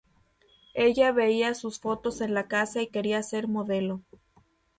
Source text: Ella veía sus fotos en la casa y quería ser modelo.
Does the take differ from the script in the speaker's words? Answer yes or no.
no